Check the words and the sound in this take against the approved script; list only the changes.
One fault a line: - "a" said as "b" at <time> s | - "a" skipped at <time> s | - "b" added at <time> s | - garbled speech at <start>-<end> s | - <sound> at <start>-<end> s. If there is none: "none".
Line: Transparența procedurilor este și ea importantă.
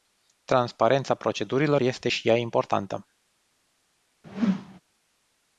- whoosh at 4.2-4.8 s